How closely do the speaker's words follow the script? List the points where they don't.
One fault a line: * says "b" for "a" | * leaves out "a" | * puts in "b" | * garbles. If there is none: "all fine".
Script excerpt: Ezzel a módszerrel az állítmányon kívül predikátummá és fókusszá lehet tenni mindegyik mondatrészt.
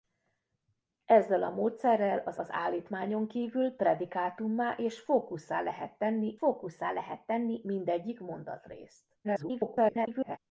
* puts in "az"
* puts in "fókusszá lehet tenni"
* garbles